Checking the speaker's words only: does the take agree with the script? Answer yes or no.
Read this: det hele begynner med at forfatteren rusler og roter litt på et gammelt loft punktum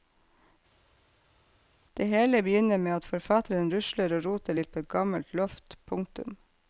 yes